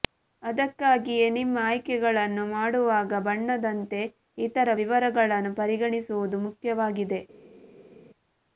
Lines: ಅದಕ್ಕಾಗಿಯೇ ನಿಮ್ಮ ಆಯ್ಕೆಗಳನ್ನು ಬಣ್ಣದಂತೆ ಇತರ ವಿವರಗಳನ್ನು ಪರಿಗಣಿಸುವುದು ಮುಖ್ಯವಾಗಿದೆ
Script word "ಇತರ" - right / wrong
right